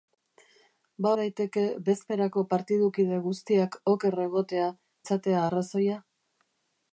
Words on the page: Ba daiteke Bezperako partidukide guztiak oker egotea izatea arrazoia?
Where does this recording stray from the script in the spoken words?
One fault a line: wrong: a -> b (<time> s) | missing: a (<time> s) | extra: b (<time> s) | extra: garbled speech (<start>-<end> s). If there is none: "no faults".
no faults